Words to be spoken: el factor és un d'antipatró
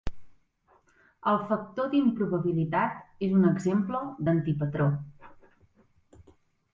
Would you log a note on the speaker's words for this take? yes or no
yes